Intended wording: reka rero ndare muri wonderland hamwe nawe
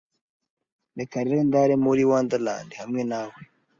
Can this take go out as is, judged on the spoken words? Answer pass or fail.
pass